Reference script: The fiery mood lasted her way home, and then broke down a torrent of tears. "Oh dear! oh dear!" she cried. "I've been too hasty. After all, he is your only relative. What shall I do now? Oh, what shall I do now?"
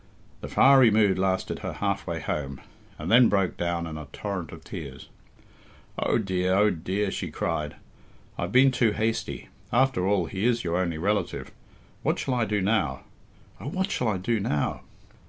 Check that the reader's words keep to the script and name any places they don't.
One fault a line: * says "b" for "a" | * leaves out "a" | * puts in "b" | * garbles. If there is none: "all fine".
* puts in "half"
* puts in "in"